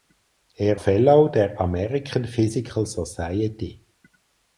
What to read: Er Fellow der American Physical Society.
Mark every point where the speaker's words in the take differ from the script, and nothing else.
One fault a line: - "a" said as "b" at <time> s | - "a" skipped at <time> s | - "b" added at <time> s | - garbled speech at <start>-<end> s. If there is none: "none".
none